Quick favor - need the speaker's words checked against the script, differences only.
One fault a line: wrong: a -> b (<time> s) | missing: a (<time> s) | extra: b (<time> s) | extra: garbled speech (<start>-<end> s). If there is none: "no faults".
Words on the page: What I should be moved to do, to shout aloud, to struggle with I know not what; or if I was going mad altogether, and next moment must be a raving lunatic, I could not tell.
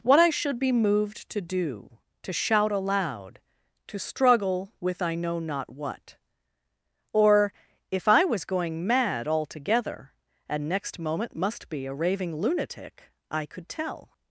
missing: not (13.7 s)